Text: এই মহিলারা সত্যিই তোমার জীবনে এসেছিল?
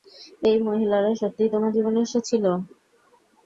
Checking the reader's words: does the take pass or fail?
pass